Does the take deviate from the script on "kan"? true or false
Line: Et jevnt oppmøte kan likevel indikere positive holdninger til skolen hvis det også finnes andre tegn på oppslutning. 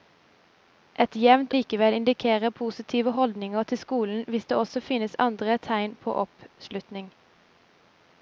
true